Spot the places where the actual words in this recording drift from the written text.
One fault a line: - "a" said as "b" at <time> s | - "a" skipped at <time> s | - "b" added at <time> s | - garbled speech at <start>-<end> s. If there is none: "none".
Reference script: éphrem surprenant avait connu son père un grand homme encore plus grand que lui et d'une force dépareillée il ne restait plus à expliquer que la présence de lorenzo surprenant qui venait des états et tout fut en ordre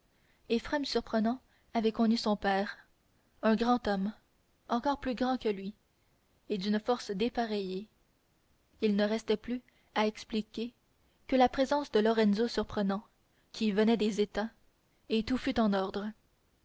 none